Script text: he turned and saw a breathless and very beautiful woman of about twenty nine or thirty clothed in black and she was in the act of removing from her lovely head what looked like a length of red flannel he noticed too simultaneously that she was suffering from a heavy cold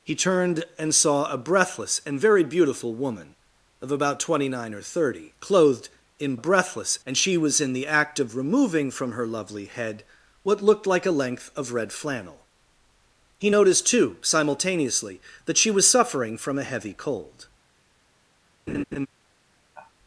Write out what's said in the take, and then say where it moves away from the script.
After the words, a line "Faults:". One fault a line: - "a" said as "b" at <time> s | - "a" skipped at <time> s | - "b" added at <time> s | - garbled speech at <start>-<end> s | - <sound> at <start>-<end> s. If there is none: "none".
he turned and saw a breathless and very beautiful woman of about twenty nine or thirty clothed in breathless and she was in the act of removing from her lovely head what looked like a length of red flannel he noticed too simultaneously that she was suffering from a heavy cold
Faults:
- "black" said as "breathless" at 6.3 s
- laugh at 18.7-19.1 s
- sigh at 19.7-19.9 s